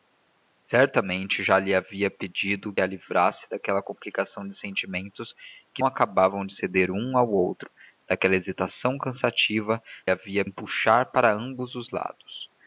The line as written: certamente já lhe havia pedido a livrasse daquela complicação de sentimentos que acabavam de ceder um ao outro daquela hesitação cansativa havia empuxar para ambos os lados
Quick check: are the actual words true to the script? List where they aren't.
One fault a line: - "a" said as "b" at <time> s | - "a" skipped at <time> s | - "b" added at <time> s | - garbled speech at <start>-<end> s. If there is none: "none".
none